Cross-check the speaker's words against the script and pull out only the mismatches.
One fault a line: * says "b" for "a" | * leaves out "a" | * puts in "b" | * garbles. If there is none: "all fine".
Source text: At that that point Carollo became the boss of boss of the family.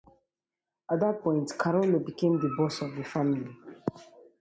* leaves out "that"
* leaves out "boss of"